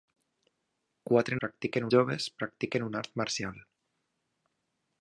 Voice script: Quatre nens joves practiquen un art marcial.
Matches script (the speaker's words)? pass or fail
fail